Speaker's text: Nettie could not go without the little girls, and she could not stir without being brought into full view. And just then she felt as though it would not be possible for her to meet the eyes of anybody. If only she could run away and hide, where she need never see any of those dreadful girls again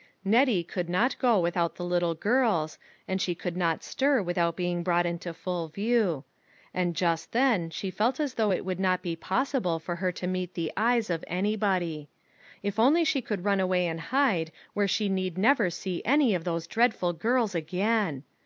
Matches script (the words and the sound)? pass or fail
pass